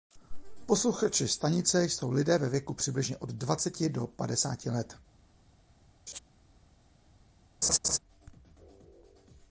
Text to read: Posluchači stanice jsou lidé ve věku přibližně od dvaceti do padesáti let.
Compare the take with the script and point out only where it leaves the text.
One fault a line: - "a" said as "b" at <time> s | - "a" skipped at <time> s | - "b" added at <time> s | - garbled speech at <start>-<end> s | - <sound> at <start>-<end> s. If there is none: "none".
- laugh at 6.1-6.2 s
- laugh at 7.6-8.0 s